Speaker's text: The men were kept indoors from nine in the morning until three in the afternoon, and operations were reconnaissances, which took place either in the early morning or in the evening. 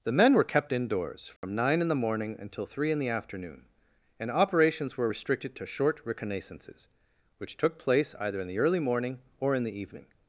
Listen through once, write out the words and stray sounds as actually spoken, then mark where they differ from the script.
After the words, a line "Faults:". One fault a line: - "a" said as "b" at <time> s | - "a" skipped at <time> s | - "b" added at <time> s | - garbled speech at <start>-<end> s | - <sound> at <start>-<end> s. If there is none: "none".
The men were kept indoors from nine in the morning until three in the afternoon, and operations were restricted to short reconnaissances, which took place either in the early morning or in the evening.
Faults:
- dropout at 1.4-1.4 s
- "restricted to short" added at 5.1 s